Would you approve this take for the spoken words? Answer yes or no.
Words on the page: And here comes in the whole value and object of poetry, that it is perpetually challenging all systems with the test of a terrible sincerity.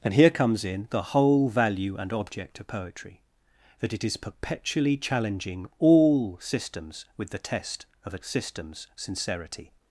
no